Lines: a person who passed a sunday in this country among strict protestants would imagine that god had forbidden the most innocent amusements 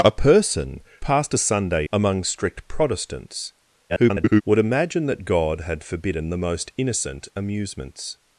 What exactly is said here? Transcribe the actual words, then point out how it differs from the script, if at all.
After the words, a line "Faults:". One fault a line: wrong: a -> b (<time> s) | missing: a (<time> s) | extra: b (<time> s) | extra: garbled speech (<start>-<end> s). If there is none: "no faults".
a person passed a sunday among strict protestants [garbled] would imagine that god had forbidden the most innocent amusements
Faults:
missing: who (0.8 s)
missing: in this country (1.9 s)
extra: garbled speech (3.9-4.4 s)